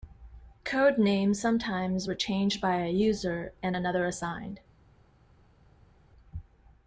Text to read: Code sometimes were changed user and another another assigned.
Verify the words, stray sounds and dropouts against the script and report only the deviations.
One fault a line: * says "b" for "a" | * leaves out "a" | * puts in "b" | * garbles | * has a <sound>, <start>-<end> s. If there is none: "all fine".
* puts in "names"
* puts in "by a"
* leaves out "another"